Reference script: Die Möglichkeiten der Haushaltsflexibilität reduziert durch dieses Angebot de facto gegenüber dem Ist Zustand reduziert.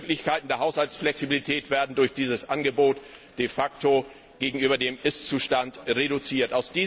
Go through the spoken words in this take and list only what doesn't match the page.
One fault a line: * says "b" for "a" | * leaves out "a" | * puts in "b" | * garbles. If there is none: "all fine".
* says "werden" for "reduziert"